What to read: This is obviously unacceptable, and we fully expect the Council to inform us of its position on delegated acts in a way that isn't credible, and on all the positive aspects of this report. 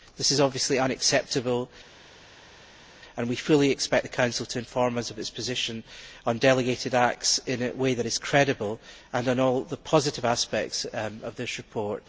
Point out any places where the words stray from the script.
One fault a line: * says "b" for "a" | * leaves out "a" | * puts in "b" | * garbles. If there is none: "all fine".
* says "is" for "isn't"